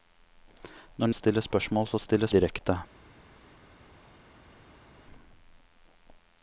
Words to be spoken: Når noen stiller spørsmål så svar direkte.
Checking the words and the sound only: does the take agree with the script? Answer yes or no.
no